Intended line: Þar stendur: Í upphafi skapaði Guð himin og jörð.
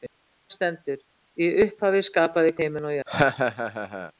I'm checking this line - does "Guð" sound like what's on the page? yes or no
no